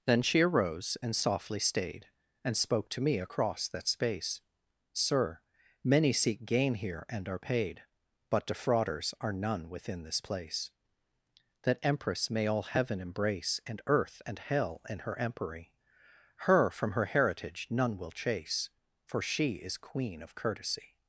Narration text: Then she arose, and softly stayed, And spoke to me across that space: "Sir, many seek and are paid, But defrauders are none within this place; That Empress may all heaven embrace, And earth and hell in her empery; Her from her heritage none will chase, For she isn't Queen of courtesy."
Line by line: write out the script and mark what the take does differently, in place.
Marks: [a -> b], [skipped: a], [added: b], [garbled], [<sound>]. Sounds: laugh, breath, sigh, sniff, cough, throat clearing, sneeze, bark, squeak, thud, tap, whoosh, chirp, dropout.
Then she arose, and softly stayed, And spoke to me across that space: "Sir, many seek [added: gain here] and are paid, But defrauders are none within this place; That Empress may all heaven embrace, And earth and hell in her empery; Her from her heritage none will chase, For she [isn't -> is] Queen of courtesy."